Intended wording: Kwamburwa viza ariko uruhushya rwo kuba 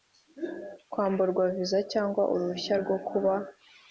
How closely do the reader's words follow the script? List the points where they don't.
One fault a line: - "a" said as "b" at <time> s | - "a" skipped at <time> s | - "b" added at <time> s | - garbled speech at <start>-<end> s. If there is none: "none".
- "ariko" said as "cyangwa" at 1.9 s